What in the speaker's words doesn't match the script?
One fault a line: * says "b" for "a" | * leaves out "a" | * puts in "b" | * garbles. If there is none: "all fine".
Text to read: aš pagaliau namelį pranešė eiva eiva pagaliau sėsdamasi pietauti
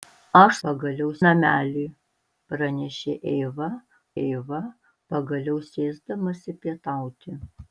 all fine